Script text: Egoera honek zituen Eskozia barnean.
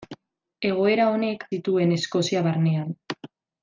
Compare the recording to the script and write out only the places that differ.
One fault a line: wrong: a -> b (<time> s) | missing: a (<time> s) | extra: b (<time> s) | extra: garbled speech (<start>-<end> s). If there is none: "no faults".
no faults